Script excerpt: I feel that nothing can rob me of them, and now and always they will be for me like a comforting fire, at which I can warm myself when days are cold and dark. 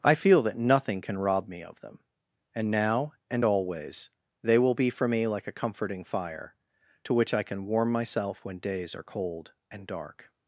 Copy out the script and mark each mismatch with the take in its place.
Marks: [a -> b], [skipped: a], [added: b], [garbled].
I feel that nothing can rob me of them, and now and always they will be for me like a comforting fire, [at -> to] which I can warm myself when days are cold and dark.